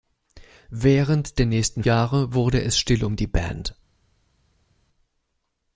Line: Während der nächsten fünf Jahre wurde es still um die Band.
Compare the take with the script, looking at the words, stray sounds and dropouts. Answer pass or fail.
fail